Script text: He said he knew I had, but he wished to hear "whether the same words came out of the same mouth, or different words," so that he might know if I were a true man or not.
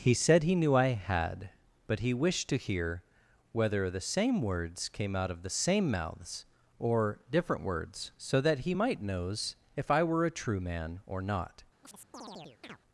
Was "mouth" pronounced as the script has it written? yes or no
no